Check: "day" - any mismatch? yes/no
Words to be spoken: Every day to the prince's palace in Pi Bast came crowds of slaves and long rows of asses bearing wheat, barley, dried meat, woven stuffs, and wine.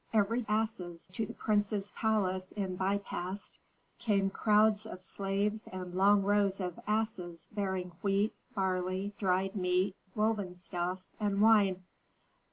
yes